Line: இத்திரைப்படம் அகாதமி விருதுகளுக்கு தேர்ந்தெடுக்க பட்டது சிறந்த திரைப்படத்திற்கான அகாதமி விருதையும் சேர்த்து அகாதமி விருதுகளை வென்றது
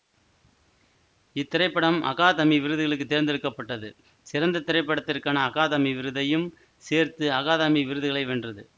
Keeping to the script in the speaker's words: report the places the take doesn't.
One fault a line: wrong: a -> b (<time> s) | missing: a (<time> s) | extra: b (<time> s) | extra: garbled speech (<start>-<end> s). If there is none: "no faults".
no faults